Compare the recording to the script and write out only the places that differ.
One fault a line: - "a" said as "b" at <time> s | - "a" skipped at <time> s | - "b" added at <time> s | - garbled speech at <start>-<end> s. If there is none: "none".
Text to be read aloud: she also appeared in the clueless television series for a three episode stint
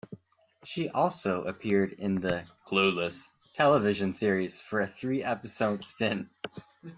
none